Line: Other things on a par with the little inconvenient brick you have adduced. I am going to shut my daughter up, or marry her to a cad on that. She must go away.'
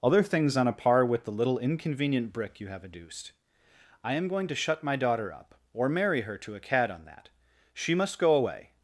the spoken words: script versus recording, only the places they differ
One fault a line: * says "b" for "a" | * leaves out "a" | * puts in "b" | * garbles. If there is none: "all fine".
all fine